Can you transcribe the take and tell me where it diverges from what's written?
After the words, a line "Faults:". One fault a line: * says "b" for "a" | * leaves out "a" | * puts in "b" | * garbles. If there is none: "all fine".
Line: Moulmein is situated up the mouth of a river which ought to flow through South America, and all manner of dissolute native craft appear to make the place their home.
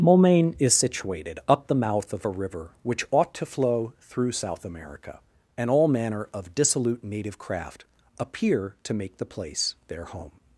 Moulmein is situated up the mouth of a river which ought to flow through South America, and all manner of dissolute native craft appear to make the place their home.
Faults:
all fine